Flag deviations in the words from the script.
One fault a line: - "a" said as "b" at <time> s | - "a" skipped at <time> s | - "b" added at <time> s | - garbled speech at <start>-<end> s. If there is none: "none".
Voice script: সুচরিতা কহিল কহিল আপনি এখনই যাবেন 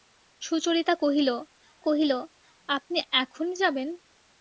none